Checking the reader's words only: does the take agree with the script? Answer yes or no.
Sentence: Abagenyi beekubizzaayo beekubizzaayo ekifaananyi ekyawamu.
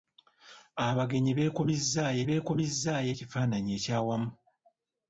yes